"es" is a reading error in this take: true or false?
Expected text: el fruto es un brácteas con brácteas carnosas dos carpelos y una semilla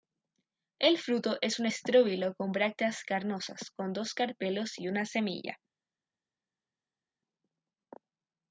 false